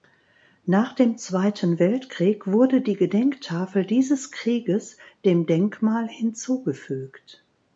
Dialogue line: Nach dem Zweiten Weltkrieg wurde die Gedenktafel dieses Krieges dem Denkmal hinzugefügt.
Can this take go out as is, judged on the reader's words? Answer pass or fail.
pass